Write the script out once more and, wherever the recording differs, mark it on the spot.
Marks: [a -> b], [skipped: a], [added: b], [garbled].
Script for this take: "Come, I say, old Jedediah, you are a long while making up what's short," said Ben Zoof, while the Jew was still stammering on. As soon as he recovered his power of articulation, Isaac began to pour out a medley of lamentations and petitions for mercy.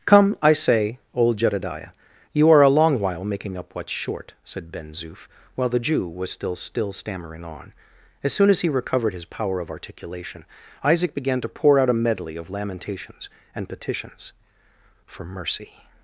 "Come, I say, old Jedediah, you are a long while making up what's short," said Ben Zoof, while the Jew was still [added: still] stammering on. As soon as he recovered his power of articulation, Isaac began to pour out a medley of lamentations and petitions for mercy.